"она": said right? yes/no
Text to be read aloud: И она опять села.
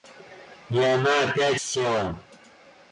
yes